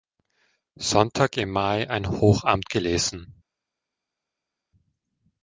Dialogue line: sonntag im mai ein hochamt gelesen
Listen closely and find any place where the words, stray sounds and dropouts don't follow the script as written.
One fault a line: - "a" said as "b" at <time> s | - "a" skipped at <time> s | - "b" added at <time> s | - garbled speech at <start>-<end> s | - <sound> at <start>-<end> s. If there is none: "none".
none